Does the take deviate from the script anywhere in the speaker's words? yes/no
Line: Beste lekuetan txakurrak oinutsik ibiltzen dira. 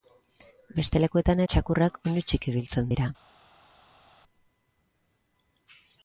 no